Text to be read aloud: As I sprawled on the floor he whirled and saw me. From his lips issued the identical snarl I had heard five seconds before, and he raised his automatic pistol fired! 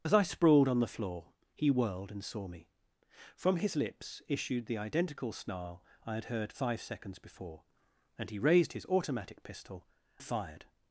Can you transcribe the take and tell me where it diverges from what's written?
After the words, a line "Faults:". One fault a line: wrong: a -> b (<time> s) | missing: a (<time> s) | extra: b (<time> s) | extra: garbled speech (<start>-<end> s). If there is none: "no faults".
As I sprawled on the floor he whirled and saw me. From his lips issued the identical snarl I had heard five seconds before, and he raised his automatic pistol fired!
Faults:
no faults